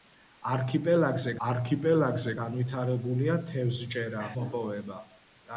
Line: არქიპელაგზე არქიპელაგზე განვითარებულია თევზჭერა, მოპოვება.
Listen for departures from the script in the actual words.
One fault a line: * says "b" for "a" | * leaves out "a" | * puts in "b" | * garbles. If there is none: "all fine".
all fine